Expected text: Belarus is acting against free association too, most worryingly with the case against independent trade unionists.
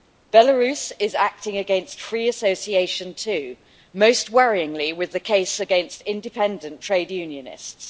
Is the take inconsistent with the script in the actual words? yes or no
no